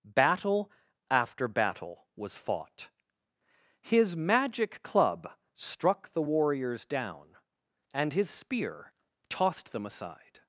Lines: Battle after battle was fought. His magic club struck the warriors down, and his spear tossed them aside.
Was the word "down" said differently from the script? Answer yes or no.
no